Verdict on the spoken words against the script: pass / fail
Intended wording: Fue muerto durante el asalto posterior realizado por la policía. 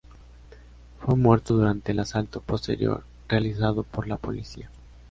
pass